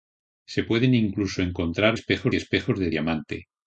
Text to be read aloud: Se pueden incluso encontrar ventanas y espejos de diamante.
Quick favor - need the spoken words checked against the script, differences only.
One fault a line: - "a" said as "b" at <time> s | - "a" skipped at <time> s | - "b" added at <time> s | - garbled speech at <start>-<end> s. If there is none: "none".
- "ventanas" said as "espejos" at 1.9 s